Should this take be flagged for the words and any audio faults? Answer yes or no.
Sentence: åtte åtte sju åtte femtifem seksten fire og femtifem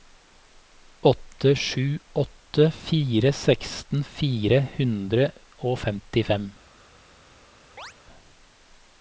yes